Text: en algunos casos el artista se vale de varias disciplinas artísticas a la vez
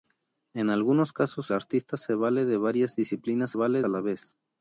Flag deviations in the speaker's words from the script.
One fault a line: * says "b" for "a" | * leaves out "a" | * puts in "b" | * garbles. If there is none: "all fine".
* leaves out "el"
* says "vale" for "artísticas"